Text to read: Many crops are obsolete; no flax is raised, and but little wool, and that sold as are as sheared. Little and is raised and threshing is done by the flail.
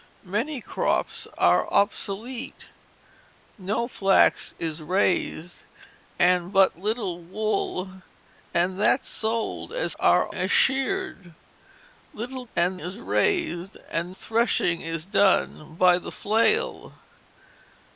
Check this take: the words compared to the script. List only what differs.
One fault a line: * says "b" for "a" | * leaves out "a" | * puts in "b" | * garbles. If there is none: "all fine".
all fine